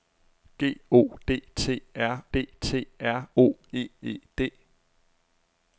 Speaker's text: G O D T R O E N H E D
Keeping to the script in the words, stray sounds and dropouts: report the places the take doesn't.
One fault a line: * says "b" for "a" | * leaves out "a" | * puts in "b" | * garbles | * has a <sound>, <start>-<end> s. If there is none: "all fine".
* puts in "D T R"
* leaves out "N H"